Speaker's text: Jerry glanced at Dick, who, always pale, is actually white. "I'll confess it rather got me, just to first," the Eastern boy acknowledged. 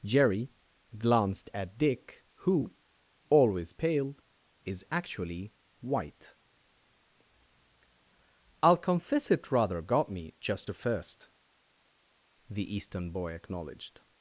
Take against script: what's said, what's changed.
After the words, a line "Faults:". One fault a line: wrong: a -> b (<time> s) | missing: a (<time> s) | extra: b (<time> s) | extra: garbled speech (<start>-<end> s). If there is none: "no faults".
Jerry glanced at Dick, who, always pale, is actually white. "I'll confess it rather got me, just to first," the Eastern boy acknowledged.
Faults:
no faults